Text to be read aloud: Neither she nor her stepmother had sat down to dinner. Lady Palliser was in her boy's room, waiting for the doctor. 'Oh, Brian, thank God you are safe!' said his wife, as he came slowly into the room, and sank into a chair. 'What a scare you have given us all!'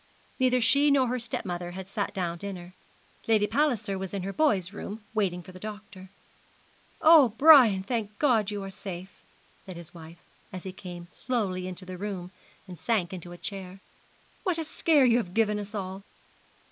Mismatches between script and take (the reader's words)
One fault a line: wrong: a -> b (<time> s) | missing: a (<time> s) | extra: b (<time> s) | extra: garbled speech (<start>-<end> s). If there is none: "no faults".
missing: to (2.4 s)